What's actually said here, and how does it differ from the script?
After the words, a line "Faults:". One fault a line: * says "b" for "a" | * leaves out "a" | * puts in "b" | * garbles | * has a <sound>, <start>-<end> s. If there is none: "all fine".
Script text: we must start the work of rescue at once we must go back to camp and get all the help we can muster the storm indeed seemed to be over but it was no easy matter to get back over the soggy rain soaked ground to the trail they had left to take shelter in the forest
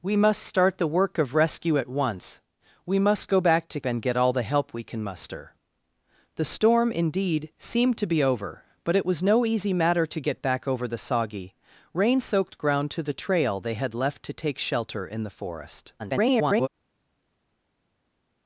we must start the work of rescue at once we must go back to and get all the help we can muster the storm indeed seemed to be over but it was no easy matter to get back over the soggy rain soaked ground to the trail they had left to take shelter in the forest [garbled]
Faults:
* leaves out "camp"
* garbles